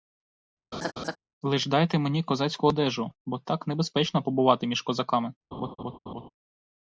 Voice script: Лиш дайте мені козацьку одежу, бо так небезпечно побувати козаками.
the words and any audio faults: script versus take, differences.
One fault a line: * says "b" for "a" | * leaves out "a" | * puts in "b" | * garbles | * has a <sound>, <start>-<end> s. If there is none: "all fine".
* has a laugh, 0.7-1.2 s
* puts in "між"
* has a laugh, 5.5-6.3 s